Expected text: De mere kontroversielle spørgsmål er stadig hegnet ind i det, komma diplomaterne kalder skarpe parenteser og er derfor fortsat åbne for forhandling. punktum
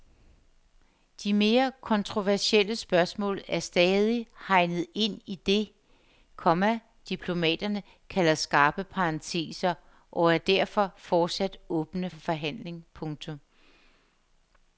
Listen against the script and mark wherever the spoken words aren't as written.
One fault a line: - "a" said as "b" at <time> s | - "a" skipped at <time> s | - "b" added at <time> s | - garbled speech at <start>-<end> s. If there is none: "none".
- "for" skipped at 12.1 s